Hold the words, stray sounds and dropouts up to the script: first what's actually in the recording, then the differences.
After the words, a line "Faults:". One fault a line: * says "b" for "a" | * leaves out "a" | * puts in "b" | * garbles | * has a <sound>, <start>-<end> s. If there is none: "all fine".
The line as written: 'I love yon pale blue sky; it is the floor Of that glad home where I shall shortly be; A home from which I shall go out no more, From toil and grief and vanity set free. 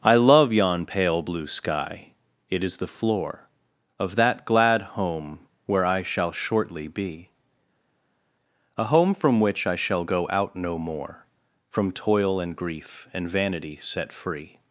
'I love yon pale blue sky; it is the floor Of that glad home where I shall shortly be; A home from which I shall go out no more, From toil and grief and vanity set free.
Faults:
all fine